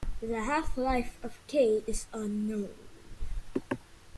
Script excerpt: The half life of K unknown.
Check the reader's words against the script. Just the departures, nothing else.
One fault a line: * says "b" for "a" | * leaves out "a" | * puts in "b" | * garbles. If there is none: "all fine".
* puts in "is"